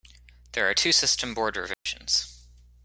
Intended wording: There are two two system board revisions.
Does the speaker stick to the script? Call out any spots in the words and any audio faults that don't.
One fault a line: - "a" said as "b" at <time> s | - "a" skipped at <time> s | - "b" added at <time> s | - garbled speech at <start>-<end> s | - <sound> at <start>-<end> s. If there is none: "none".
- "two" skipped at 0.9 s
- dropout at 1.7-1.9 s